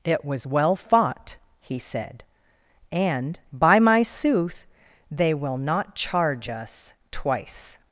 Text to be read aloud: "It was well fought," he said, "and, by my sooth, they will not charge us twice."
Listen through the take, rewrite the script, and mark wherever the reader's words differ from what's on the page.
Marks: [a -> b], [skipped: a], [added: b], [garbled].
"It was well fought," he said, "and, by my sooth, they will not charge us twice."